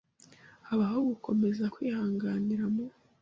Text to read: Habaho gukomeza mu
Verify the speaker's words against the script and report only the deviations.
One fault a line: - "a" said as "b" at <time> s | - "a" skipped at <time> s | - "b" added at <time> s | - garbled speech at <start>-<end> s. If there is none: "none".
- "kwihanganira" added at 1.7 s